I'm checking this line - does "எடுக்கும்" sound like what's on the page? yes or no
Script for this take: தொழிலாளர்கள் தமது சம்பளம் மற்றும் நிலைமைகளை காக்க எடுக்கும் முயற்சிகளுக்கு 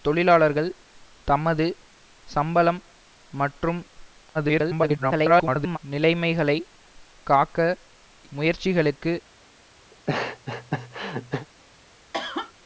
no